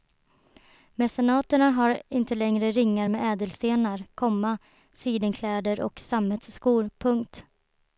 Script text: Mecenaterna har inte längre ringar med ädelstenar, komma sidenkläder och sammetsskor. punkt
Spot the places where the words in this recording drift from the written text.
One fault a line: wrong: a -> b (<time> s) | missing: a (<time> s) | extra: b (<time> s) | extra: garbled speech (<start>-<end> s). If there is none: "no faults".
no faults